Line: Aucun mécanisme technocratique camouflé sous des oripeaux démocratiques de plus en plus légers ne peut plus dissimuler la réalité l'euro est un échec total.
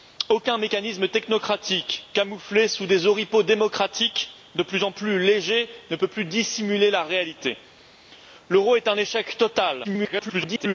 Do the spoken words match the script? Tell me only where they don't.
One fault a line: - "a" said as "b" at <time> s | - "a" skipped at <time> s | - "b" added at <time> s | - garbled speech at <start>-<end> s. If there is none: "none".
- garbled speech at 9.8-10.7 s